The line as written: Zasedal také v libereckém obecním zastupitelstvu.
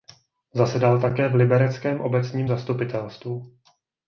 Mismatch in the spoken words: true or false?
false